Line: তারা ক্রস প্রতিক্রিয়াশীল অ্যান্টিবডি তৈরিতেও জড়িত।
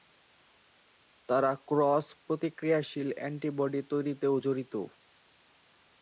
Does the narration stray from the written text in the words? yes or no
no